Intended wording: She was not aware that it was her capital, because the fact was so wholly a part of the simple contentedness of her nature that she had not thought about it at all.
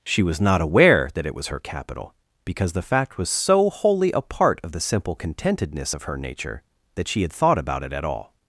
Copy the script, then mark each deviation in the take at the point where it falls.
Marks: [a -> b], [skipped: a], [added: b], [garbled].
She was not aware that it was her capital, because the fact was so wholly a part of the simple contentedness of her nature that she had [skipped: not] thought about it at all.